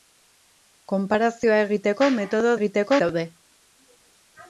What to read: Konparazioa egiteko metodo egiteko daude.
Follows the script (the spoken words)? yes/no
yes